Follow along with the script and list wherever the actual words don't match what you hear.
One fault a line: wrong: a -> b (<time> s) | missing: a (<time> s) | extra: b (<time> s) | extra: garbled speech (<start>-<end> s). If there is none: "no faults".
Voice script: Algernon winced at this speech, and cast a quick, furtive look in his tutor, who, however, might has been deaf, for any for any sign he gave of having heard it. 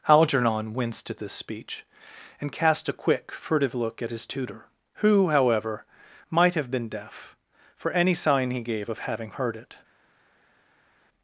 wrong: in -> at (4.0 s)
wrong: has -> have (6.5 s)
missing: for any (8.1 s)